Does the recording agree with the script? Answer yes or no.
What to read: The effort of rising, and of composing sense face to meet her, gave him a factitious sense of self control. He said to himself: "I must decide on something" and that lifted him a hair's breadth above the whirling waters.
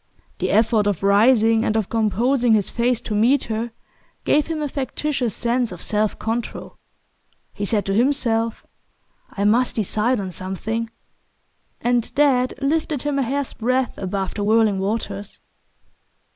no